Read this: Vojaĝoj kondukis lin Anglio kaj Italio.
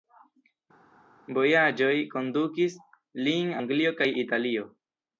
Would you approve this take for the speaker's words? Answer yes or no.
yes